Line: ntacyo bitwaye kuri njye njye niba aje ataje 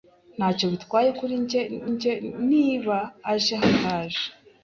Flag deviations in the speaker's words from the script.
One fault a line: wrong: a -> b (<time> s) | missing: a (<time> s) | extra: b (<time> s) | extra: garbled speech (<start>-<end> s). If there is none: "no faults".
no faults